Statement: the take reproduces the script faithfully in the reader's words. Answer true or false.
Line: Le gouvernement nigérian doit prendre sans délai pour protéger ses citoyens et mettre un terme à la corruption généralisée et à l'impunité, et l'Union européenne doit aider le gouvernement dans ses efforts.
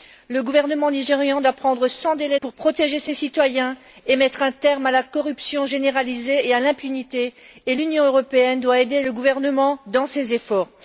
true